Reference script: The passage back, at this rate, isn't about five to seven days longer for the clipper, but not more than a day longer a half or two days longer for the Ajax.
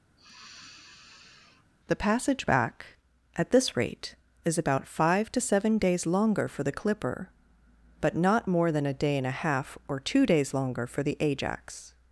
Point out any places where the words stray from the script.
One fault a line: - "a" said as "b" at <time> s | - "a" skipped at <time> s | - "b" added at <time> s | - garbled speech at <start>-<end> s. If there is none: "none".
- "isn't" said as "is" at 4.4 s
- "longer" said as "and" at 9.2 s